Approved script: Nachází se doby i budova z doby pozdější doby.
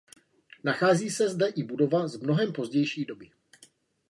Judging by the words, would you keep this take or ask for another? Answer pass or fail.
fail